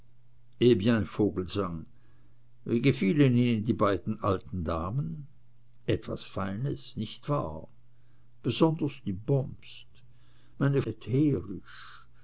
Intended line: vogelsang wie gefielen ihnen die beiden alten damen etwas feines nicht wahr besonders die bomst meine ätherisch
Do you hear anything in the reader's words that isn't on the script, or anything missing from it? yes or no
no